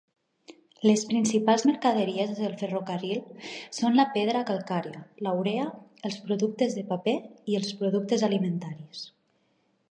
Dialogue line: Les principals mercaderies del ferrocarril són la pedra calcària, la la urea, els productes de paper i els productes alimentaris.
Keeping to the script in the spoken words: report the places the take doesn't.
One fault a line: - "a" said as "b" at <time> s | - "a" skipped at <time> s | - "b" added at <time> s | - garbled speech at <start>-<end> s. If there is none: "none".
- "la" skipped at 5.4 s